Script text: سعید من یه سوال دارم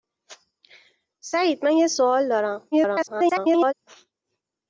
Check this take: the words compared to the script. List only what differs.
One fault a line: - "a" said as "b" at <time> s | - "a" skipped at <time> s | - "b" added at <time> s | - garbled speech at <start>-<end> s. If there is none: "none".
- garbled speech at 2.7-3.7 s